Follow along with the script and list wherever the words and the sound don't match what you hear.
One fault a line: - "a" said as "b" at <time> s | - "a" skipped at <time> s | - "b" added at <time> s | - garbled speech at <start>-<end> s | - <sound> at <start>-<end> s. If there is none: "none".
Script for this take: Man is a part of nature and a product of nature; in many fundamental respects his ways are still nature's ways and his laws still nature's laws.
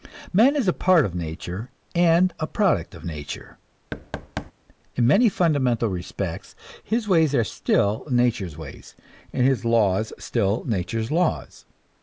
- thud at 3.9-4.5 s